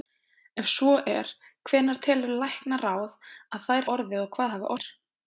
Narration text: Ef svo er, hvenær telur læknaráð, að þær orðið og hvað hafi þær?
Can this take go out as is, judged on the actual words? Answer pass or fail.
pass